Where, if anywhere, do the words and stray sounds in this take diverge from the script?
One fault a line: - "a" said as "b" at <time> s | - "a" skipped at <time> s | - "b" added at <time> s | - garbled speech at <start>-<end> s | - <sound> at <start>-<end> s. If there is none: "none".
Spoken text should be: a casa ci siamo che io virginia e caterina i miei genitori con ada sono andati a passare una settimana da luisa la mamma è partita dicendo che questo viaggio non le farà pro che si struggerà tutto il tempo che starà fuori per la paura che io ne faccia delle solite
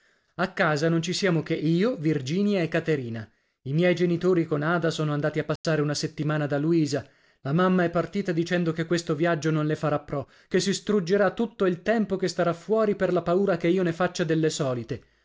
- "non" added at 0.9 s
- dropout at 5.6-5.6 s